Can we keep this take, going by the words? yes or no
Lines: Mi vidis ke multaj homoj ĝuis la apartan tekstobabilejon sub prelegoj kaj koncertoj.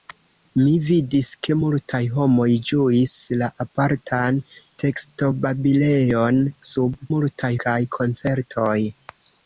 no